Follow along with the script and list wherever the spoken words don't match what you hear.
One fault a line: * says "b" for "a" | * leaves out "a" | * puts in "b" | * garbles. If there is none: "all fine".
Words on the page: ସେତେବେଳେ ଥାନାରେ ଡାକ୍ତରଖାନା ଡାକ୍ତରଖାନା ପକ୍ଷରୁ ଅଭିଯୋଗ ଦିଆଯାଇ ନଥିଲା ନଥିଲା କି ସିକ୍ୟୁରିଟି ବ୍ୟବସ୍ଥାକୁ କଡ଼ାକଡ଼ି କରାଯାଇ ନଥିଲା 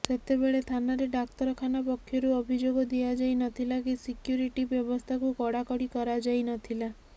* leaves out "ଡାକ୍ତରଖାନା"
* leaves out "ନଥିଲା"